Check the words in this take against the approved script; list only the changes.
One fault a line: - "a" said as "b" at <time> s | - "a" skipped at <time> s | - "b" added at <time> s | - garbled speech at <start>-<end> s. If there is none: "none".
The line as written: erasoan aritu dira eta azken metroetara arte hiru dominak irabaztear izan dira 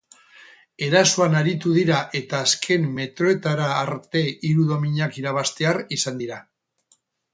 none